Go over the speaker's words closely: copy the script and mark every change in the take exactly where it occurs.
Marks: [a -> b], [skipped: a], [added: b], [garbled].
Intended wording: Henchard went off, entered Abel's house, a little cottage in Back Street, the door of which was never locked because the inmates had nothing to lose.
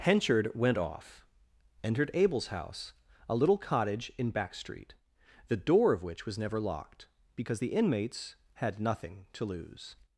Henchard went off, entered Abel's house, a little cottage in Back Street, the door of which was never locked because the inmates had nothing to lose.